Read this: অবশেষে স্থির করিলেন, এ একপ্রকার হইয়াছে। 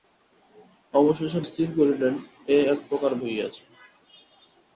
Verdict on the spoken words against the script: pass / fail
pass